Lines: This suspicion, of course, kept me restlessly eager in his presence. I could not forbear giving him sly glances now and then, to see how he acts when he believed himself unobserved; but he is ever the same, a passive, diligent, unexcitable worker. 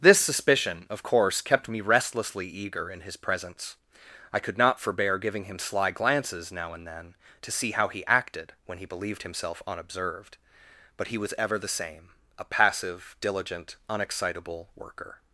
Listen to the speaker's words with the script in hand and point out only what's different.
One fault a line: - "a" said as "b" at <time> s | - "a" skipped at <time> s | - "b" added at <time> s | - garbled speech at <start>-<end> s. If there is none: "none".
- "acts" said as "acted" at 8.1 s
- "is" said as "was" at 11.2 s